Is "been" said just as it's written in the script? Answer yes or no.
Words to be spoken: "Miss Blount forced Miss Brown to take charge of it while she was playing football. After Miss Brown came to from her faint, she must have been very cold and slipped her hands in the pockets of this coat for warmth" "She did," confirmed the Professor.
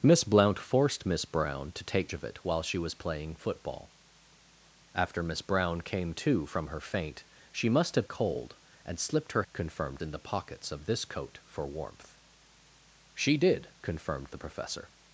no